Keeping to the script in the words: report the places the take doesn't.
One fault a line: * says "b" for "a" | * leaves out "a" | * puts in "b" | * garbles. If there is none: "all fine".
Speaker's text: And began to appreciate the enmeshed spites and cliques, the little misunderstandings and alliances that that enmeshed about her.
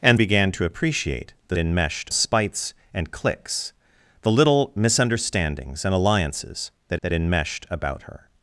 all fine